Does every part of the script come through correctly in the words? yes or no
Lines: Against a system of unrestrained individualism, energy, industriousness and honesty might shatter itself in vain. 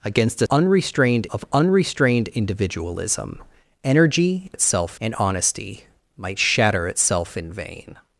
no